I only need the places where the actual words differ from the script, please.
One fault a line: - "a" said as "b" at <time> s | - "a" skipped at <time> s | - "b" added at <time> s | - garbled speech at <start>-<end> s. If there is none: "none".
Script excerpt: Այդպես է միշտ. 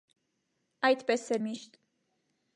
none